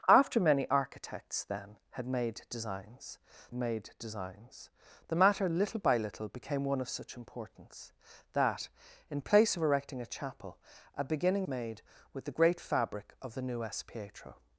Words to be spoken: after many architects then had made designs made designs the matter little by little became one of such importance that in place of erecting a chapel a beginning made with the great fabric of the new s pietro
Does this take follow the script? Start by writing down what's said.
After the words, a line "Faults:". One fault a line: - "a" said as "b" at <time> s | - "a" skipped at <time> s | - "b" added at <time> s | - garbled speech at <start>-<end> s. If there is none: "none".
after many architects then had made designs made designs the matter little by little became one of such importance that in place of erecting a chapel a beginning made with the great fabric of the new s pietro
Faults:
none